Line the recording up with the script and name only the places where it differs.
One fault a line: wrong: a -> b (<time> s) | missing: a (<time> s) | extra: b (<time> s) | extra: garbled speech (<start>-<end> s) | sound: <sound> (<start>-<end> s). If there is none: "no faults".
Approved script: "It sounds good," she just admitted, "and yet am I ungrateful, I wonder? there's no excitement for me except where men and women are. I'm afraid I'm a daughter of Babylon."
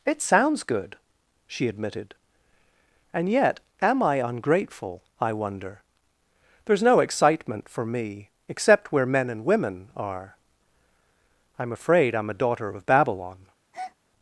missing: just (1.7 s)
sound: breath (13.7-14.0 s)